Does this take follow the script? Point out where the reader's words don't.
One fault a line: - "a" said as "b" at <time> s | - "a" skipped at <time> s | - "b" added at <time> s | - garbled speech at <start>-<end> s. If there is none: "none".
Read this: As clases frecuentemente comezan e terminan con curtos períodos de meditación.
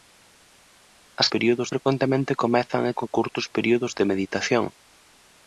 - "clases" said as "períodos" at 1.3 s
- "terminan" skipped at 3.0 s